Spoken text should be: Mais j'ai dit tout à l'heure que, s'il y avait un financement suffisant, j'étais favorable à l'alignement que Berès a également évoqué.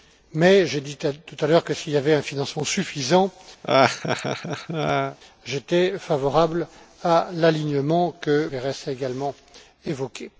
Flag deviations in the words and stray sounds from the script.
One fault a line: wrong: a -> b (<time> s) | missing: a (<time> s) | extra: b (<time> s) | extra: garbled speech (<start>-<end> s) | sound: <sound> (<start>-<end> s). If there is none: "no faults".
sound: laugh (3.6-5.2 s)